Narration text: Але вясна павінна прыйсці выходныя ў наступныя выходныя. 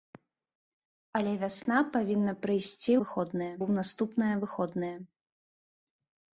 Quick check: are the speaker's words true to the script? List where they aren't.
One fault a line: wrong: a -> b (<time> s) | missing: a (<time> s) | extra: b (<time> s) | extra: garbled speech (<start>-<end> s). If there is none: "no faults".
no faults